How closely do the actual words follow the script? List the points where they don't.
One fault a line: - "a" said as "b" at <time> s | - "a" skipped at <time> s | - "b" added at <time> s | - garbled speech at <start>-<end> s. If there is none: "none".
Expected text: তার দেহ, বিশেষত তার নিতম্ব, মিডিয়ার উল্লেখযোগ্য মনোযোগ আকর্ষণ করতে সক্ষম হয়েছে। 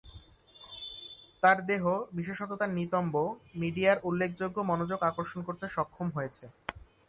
none